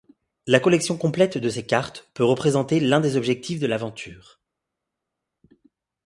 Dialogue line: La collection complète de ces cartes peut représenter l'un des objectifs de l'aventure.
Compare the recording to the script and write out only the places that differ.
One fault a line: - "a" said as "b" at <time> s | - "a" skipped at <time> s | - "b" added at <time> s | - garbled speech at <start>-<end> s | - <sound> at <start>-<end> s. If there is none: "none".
none